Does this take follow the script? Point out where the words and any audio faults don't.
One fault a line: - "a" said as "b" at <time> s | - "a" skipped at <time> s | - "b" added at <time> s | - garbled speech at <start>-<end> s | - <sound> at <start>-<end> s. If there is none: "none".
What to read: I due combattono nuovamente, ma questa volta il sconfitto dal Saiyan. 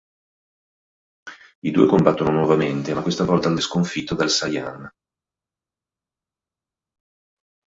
none